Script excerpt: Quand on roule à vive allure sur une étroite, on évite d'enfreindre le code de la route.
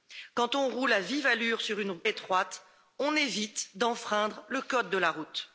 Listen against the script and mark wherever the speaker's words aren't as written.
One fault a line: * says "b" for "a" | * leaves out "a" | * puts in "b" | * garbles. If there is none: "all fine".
all fine